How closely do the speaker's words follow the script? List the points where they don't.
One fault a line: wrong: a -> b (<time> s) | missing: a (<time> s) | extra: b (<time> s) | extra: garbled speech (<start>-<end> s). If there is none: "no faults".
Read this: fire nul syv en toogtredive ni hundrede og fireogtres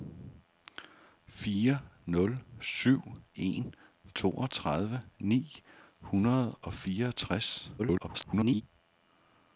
extra: garbled speech (7.8-8.6 s)